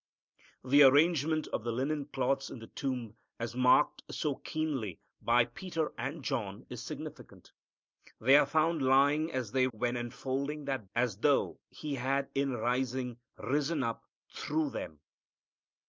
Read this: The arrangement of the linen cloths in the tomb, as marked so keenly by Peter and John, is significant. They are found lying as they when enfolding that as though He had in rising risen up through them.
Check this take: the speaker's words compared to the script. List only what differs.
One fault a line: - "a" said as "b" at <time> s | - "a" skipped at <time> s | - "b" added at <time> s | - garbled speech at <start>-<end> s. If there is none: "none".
none